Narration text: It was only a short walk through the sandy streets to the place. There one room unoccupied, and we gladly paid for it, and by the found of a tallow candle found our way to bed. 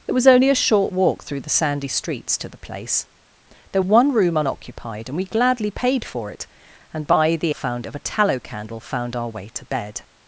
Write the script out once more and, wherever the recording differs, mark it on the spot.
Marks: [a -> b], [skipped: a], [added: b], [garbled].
It was only a short walk through the sandy streets to the place. There one room unoccupied, and we gladly paid for it, and by the found of a tallow candle found our way to bed.